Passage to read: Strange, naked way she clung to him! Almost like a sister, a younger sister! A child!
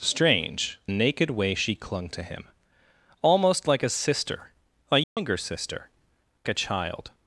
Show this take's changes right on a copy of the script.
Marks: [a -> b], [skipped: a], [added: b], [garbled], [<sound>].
Strange, naked way she clung to him! Almost like a sister, a younger [dropout] sister! A child!